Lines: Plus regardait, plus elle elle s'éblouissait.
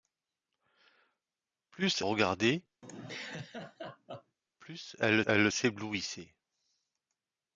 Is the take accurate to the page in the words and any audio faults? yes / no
no